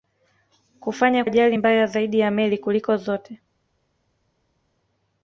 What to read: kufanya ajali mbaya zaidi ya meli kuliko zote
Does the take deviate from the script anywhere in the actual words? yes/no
no